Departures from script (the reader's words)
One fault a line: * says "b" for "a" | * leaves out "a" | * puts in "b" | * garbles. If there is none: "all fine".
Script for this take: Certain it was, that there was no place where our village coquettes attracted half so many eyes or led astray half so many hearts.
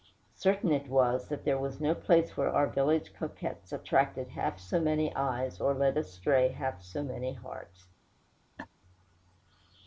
all fine